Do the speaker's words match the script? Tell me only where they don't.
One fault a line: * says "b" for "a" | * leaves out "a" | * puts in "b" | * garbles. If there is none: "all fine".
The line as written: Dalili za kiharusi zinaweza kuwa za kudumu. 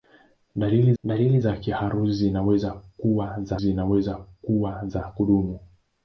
* puts in "dalili"
* puts in "zinaweza kuwa za"